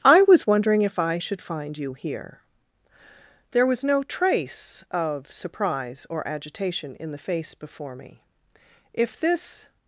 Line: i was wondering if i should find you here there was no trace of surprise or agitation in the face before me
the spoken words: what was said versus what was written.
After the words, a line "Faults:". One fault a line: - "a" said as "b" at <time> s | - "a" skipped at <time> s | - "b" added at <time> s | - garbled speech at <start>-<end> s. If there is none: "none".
i was wondering if i should find you here there was no trace of surprise or agitation in the face before me if this
Faults:
- "if this" added at 8.9 s